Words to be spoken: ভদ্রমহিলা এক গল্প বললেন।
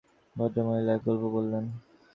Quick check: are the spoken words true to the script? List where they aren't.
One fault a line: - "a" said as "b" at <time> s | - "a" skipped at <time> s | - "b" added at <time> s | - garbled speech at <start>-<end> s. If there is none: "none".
none